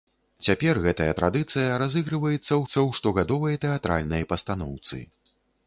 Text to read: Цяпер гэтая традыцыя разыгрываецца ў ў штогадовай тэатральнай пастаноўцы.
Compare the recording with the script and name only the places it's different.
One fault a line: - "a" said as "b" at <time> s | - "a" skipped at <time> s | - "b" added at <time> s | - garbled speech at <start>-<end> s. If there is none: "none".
none